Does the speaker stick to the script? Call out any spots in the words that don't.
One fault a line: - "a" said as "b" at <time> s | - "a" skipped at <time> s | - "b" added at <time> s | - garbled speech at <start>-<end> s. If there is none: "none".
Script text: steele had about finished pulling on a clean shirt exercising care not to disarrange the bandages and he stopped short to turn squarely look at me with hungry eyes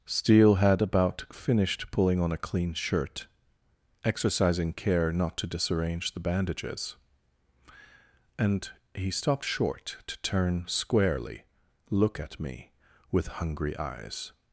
none